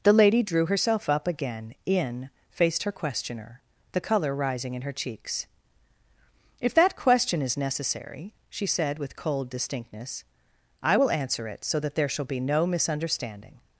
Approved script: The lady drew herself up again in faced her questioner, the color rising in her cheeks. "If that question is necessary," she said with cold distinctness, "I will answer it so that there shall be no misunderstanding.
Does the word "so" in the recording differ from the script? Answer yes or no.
no